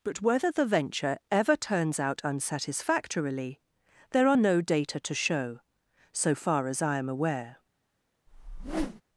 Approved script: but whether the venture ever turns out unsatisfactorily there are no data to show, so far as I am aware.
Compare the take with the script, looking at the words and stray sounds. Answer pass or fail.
fail